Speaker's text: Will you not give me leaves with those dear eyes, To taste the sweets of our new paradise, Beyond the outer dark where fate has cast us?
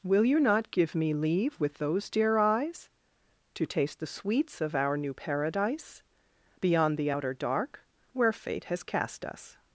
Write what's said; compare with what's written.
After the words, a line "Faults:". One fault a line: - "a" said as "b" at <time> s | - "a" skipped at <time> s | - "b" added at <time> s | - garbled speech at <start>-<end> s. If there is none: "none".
Will you not give me leave with those dear eyes, To taste the sweets of our new paradise, Beyond the outer dark where fate has cast us?
Faults:
- "leaves" said as "leave" at 1.1 s